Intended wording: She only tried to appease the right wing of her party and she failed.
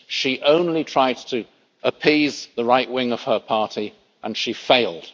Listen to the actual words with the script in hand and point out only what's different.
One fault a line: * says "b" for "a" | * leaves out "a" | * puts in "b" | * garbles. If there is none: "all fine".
all fine